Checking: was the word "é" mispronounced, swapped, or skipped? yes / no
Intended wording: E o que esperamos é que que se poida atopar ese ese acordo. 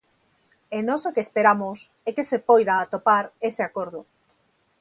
no